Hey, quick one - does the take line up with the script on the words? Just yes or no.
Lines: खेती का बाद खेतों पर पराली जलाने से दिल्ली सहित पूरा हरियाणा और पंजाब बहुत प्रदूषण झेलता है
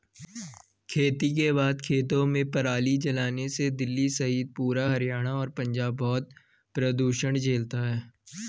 no